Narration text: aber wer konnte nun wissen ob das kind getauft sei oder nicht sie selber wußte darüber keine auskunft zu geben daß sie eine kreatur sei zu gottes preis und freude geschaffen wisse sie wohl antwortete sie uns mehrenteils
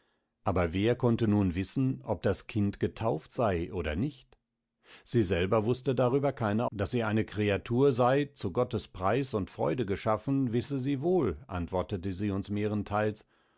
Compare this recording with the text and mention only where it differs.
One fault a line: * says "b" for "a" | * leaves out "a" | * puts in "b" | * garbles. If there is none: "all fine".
* leaves out "auskunft zu geben"